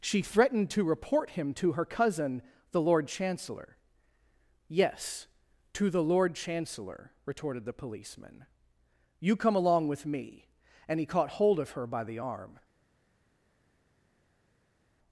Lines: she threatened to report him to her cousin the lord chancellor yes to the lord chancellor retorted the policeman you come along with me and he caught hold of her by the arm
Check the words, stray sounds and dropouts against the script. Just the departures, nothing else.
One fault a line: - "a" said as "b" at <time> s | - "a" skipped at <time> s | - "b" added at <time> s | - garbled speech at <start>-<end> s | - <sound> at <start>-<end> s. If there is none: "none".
none